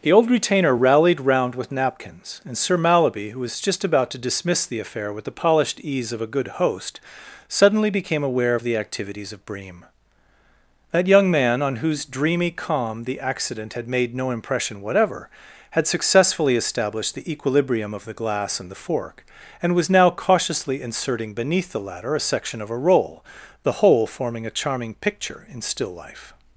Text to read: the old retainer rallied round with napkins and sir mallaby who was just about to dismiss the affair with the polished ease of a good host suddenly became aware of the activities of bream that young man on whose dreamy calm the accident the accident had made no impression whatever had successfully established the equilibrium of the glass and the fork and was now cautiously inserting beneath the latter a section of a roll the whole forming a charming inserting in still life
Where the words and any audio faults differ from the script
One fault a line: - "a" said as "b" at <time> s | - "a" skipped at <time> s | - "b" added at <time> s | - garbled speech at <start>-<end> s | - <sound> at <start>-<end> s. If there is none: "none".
- "the accident" skipped at 13.7 s
- "inserting" said as "picture" at 24.9 s